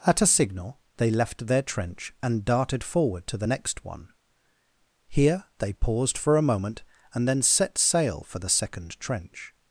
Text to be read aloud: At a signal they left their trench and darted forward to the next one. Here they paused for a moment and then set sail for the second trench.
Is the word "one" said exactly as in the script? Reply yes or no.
yes